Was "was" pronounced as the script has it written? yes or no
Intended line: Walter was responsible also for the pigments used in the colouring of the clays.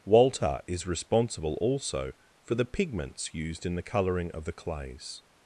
no